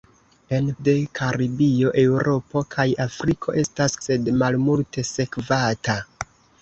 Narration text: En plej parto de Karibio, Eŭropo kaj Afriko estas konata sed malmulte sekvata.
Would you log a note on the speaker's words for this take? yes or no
yes